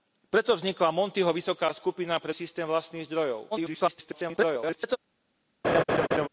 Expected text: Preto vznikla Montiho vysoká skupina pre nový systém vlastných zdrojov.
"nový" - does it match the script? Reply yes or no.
no